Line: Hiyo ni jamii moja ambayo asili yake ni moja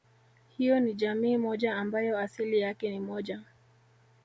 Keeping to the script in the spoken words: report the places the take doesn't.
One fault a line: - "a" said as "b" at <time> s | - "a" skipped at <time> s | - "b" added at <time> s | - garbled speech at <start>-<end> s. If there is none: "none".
none